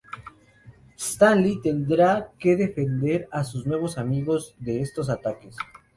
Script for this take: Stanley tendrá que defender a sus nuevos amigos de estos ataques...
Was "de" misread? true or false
false